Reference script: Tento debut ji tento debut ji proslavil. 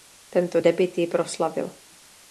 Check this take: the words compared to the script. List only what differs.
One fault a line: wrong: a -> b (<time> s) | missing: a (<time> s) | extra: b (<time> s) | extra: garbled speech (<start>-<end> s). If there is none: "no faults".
missing: tento debut ji (1.1 s)